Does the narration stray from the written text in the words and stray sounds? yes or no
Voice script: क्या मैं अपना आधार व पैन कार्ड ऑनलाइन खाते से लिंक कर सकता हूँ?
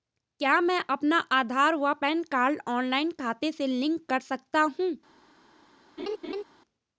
yes